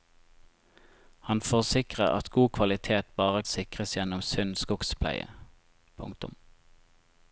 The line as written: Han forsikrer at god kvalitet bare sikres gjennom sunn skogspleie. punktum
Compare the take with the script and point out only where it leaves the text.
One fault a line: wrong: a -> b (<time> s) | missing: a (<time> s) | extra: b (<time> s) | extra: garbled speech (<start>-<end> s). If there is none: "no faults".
no faults